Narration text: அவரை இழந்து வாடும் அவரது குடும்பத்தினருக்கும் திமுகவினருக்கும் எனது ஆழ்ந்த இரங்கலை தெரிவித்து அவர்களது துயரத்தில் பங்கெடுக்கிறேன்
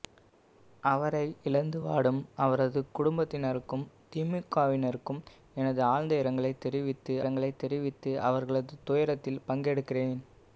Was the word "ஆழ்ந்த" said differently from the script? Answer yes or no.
no